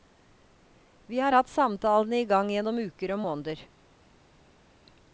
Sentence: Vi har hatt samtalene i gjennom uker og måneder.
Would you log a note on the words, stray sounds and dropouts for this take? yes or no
yes